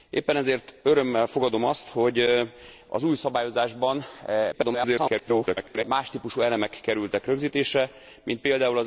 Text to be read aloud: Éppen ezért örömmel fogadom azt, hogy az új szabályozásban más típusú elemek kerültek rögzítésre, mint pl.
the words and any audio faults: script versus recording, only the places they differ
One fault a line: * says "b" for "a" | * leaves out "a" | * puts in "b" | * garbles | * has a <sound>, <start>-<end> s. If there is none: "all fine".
* garbles